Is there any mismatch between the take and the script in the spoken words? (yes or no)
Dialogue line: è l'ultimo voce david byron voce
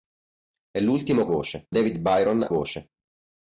no